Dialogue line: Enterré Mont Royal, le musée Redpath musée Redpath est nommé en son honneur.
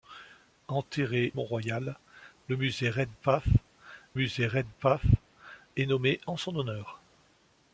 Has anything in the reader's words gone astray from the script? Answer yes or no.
no